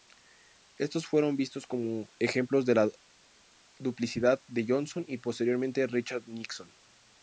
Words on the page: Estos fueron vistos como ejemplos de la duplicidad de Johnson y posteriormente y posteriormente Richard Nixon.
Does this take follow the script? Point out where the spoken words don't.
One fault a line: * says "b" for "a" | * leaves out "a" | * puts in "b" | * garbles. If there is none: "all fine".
* leaves out "y posteriormente"